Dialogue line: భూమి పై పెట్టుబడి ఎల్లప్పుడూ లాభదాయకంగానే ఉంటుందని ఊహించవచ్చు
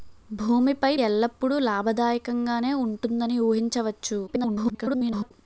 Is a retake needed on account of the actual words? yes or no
yes